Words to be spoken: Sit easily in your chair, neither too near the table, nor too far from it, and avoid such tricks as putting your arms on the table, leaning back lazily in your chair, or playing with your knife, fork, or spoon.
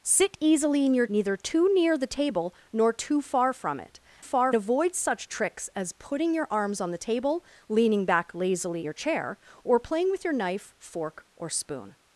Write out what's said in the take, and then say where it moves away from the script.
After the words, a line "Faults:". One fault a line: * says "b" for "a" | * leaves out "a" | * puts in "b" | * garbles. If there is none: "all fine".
Sit easily in your neither too near the table, nor too far from it, far avoid such tricks as putting your arms on the table, leaning back lazily your chair, or playing with your knife, fork, or spoon.
Faults:
* leaves out "chair"
* says "far" for "and"
* leaves out "in"